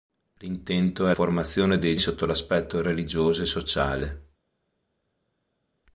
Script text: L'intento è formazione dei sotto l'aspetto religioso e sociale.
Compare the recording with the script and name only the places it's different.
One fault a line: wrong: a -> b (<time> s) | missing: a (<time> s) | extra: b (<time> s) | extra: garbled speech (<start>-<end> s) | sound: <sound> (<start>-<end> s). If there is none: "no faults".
no faults